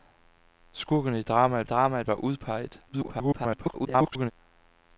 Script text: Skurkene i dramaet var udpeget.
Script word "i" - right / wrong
right